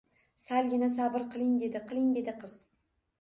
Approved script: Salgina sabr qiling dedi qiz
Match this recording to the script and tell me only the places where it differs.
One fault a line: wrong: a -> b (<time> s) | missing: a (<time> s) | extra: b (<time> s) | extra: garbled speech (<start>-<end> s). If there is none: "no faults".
extra: qiling dedi (1.9 s)